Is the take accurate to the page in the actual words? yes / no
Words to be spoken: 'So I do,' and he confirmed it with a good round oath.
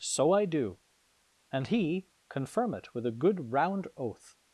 no